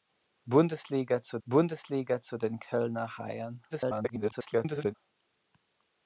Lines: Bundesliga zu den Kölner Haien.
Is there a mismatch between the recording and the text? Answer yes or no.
yes